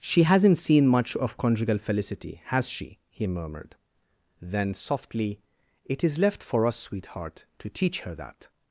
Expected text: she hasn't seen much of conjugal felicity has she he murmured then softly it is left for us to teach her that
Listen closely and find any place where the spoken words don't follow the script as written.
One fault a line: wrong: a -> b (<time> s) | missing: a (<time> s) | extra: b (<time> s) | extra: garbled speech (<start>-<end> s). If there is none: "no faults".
extra: sweetheart (6.8 s)